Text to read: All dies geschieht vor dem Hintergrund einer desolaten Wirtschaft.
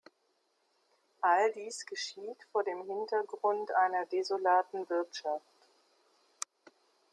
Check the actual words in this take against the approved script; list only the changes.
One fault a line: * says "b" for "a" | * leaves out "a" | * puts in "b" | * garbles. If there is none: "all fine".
all fine